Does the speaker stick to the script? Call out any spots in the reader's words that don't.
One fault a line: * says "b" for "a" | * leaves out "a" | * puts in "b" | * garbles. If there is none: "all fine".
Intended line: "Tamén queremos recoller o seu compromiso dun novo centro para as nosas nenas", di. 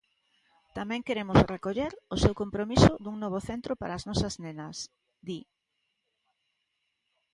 all fine